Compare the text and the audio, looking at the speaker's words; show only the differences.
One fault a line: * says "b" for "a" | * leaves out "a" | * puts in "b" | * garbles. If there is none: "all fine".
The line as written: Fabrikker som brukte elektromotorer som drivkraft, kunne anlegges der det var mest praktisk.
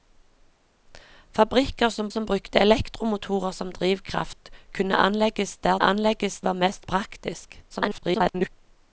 * puts in "som"
* says "anlegges" for "det"
* garbles